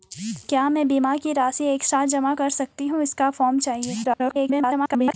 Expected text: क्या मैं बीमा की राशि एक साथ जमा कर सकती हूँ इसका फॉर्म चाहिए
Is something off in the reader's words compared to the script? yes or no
yes